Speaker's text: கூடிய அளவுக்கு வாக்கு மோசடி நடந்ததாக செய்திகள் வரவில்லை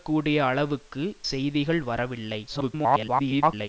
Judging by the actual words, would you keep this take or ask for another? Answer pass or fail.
fail